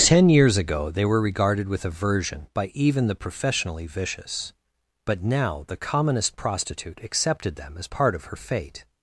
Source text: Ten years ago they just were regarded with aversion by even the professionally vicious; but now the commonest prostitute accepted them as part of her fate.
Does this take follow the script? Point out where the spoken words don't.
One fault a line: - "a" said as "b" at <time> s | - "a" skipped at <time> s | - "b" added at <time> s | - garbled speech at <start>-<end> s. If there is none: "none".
- "just" skipped at 1.1 s